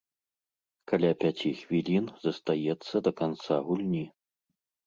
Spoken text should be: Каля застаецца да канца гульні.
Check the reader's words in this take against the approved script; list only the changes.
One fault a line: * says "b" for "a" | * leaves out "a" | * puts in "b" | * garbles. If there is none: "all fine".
* puts in "пяці хвілін"